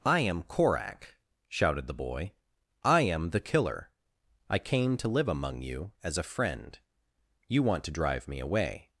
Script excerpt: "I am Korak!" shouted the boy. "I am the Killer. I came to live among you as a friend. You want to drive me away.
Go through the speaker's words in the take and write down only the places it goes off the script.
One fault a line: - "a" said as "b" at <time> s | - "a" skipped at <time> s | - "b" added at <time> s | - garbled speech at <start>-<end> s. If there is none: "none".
none